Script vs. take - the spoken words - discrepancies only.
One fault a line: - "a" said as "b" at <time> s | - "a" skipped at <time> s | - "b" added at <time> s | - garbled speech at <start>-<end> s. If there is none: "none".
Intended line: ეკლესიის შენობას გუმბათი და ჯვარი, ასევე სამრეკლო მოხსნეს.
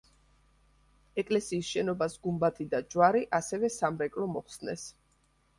none